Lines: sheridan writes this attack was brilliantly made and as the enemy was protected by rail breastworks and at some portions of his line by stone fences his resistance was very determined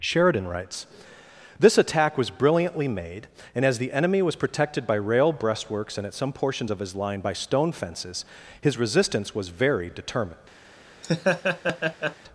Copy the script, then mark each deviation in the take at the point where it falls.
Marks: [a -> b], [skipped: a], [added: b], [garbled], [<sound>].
sheridan writes this attack was brilliantly made and as the enemy was protected by rail breastworks and at some portions of his line by stone fences his resistance was very determined [laugh]